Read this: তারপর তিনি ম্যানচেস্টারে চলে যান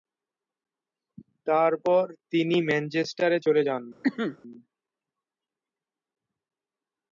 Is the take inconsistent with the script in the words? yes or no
no